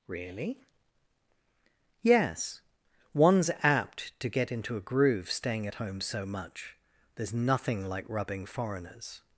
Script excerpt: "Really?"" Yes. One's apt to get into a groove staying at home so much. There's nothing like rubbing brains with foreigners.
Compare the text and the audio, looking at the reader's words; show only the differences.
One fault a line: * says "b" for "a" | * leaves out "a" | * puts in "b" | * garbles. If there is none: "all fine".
* leaves out "brains with"